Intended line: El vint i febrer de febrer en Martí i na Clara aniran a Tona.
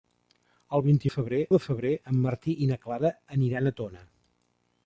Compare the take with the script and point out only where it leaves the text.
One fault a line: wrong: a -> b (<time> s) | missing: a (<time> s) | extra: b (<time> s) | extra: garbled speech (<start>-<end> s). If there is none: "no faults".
no faults